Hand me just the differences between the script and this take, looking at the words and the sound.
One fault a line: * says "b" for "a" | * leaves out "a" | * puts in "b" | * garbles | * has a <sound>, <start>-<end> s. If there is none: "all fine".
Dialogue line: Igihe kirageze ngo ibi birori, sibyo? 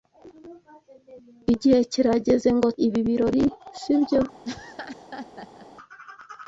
* has a laugh, 4.4-5.7 s